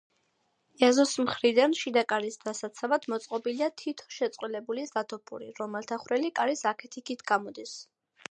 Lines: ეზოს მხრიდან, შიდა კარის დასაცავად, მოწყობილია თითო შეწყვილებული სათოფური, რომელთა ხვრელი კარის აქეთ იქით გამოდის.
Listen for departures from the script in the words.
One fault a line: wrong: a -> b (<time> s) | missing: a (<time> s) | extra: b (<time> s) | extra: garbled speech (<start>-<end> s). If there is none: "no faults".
no faults